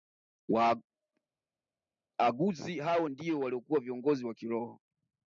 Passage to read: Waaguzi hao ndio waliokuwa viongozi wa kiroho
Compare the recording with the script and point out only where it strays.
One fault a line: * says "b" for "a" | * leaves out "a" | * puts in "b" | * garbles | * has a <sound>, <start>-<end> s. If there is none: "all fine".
all fine